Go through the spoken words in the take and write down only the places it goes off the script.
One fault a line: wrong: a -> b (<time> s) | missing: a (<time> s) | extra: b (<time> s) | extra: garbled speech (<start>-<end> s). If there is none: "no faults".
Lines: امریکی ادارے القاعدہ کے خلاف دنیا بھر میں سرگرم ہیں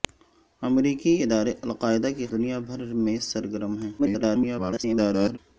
missing: خلاف (2.3 s)
extra: garbled speech (4.0-5.4 s)